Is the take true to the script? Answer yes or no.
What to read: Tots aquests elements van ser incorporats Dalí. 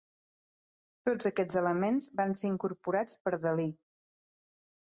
no